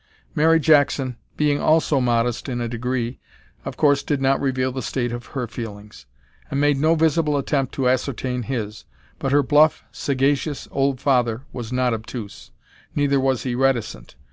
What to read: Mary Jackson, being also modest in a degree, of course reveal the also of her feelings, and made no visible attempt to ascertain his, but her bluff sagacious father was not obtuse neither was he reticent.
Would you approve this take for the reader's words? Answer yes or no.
no